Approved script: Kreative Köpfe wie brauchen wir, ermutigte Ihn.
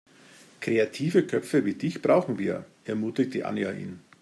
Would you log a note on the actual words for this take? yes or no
yes